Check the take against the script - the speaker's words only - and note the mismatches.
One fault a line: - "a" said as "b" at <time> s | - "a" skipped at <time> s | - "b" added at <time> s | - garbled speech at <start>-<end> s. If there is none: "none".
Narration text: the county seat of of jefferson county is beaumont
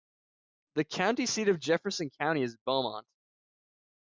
- "of" skipped at 1.6 s